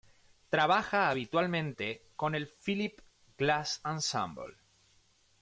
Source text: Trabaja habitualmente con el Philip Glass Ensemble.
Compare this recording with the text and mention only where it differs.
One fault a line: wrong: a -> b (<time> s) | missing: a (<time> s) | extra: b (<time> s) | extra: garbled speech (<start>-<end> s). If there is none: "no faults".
no faults